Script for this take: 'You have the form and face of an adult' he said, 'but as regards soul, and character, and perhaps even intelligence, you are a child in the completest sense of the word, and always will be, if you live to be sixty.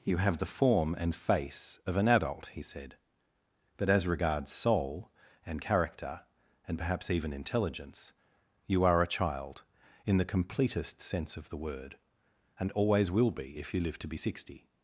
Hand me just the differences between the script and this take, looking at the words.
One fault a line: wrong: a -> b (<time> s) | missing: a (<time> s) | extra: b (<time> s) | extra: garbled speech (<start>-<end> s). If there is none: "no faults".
no faults